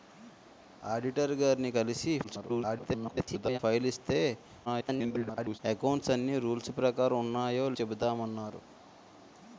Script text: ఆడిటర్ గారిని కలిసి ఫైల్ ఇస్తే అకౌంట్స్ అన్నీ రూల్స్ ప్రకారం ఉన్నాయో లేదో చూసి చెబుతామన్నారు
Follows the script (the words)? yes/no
no